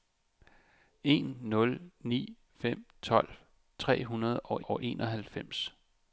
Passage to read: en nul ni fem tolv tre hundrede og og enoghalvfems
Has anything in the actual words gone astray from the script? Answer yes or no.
no